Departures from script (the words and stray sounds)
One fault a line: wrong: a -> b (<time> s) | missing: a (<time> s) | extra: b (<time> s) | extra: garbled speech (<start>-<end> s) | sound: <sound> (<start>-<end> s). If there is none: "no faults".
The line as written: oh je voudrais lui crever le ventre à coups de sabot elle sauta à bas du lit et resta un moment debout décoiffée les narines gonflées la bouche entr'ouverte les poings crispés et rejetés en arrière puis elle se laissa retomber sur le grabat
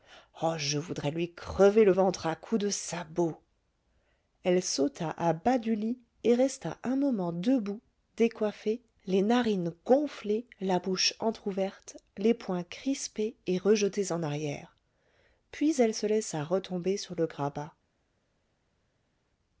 no faults